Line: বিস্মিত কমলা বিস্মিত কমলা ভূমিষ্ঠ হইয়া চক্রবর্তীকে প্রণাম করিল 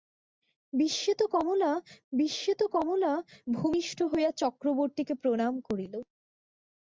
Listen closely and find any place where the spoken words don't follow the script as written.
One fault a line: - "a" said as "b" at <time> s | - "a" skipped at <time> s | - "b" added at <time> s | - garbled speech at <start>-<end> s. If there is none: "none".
none